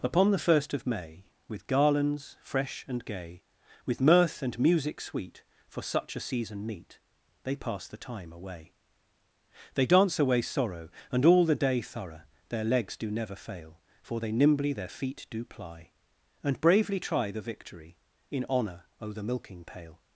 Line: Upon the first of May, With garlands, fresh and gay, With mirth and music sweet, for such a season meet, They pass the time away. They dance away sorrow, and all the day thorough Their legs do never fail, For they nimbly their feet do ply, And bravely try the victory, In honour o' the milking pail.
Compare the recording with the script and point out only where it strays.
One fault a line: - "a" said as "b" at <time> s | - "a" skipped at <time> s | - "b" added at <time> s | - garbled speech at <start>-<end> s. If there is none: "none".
none